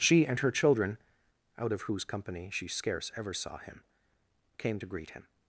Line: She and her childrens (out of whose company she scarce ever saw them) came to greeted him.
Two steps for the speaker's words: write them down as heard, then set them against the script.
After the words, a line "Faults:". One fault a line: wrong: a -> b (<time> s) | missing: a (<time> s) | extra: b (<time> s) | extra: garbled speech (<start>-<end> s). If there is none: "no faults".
She and her children (out of whose company she scarce ever saw him) came to greet him.
Faults:
wrong: childrens -> children (0.5 s)
wrong: them -> him (3.6 s)
wrong: greeted -> greet (4.9 s)